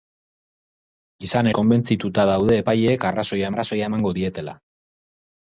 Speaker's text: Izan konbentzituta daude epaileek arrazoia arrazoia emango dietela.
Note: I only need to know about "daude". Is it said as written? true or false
true